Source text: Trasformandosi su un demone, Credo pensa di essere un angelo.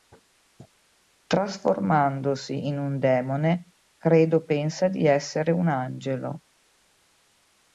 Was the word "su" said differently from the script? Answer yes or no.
yes